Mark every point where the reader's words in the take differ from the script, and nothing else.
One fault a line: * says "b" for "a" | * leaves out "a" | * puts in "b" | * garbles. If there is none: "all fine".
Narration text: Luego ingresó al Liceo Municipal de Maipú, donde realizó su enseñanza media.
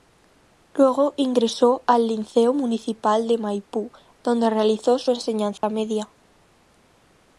all fine